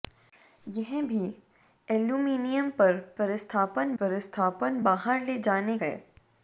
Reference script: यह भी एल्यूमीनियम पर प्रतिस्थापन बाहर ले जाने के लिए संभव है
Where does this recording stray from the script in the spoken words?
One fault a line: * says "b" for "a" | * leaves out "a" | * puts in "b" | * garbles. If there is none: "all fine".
* puts in "प्रतिस्थापन"
* leaves out "के लिए संभव"